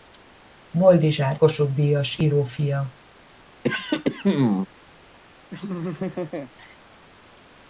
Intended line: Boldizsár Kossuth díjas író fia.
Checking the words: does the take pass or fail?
pass